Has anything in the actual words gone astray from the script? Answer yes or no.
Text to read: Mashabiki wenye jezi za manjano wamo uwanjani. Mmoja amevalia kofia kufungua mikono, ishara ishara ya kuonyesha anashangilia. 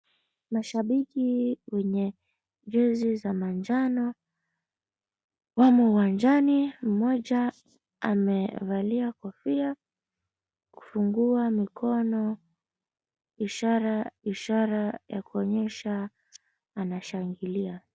no